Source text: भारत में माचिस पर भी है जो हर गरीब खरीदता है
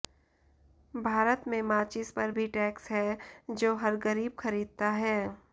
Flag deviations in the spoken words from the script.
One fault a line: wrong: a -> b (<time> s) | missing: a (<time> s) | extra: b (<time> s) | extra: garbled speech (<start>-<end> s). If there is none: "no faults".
extra: टैक्स (2.5 s)